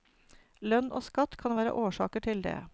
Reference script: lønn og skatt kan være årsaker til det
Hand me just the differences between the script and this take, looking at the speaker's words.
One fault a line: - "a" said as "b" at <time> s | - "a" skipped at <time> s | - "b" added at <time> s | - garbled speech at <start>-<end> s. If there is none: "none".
none